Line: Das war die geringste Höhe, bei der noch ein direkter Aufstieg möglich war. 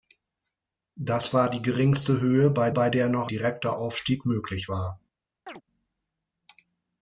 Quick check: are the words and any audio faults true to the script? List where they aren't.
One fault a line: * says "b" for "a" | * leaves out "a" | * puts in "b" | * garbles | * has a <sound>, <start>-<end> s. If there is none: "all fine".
* puts in "bei"
* leaves out "ein"
* has a chirp, 5.5-5.6 s